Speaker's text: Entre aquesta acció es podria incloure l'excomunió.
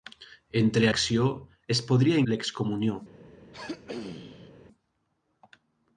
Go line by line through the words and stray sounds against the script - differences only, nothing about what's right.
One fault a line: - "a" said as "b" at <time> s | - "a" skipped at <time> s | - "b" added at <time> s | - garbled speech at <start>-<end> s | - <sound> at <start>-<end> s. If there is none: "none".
- "aquesta" skipped at 0.9 s
- "incloure" skipped at 2.2 s
- throat clearing at 3.5-4.5 s